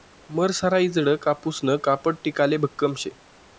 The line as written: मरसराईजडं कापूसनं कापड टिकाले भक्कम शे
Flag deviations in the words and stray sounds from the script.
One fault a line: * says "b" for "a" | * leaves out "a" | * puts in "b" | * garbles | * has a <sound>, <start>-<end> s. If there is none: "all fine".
all fine